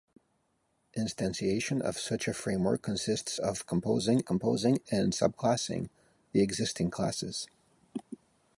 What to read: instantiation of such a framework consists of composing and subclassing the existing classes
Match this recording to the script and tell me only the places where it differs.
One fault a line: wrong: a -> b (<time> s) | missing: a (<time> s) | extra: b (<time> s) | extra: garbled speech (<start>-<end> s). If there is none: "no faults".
extra: composing (4.2 s)